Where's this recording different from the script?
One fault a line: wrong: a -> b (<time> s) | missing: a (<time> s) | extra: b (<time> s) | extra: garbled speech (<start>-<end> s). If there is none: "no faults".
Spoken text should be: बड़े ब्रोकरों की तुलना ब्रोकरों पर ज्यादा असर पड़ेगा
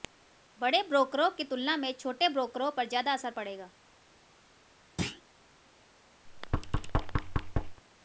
extra: में छोटे (1.8 s)